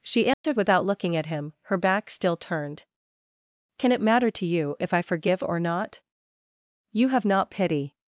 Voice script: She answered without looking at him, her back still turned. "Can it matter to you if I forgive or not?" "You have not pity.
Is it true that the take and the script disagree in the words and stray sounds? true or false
true